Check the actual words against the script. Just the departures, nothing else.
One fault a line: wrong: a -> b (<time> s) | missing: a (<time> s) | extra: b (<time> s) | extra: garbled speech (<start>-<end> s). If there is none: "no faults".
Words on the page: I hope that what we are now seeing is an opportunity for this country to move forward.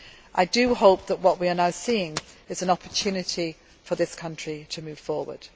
no faults